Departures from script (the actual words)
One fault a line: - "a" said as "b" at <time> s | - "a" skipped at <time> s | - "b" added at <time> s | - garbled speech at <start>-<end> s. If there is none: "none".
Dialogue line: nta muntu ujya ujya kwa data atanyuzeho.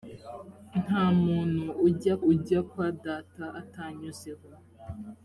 none